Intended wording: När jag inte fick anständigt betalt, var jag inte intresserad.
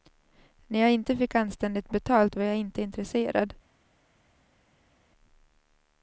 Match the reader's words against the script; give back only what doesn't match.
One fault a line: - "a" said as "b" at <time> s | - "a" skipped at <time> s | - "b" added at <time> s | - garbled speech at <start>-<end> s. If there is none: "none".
none